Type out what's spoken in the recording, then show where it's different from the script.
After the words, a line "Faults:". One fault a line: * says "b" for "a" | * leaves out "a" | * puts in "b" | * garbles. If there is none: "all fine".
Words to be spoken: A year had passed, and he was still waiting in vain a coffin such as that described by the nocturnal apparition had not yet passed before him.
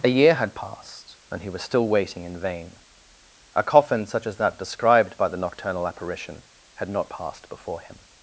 A year had passed, and he was still waiting in vain a coffin such as that described by the nocturnal apparition had not passed before him.
Faults:
* leaves out "yet"